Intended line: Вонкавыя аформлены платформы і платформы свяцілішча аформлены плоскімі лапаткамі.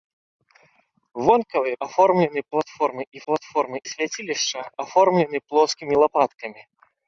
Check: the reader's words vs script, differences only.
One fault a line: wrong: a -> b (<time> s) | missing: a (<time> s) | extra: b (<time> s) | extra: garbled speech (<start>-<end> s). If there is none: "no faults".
no faults